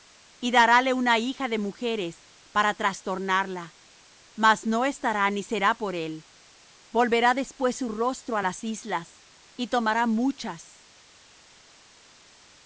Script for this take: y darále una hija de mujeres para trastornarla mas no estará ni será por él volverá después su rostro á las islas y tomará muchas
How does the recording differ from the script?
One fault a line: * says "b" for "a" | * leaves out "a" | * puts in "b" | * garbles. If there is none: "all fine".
all fine